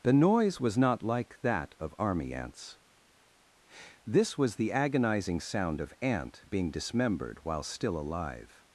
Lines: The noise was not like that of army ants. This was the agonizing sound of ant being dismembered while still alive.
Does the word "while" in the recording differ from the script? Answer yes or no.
no